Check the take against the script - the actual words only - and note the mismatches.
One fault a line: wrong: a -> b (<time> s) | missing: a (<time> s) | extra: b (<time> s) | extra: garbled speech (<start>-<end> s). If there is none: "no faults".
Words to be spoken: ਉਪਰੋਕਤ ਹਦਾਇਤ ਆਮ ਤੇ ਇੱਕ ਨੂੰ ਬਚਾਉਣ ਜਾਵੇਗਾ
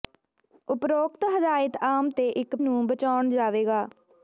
no faults